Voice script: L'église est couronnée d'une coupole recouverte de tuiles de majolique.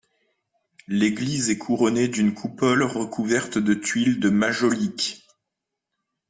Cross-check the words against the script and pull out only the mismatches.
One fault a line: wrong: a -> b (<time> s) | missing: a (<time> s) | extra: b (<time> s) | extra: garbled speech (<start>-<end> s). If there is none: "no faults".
no faults